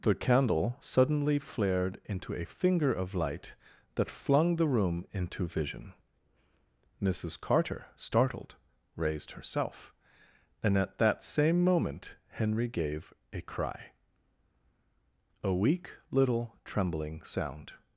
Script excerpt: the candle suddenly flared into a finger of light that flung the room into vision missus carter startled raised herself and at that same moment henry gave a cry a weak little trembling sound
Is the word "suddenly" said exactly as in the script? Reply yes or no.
yes